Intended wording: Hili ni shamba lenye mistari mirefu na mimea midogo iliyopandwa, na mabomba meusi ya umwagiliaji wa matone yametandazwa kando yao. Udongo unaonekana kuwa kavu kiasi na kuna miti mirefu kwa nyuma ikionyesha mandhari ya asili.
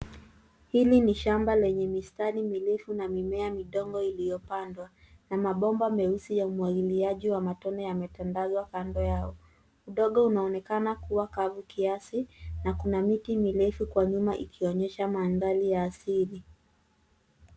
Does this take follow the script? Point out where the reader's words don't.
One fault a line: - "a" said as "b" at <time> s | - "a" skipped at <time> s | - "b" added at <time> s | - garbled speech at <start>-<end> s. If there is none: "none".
none